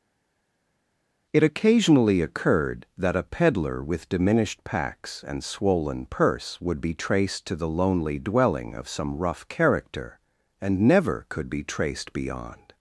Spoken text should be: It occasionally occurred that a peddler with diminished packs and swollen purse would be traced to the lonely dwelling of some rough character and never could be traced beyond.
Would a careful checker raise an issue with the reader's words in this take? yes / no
no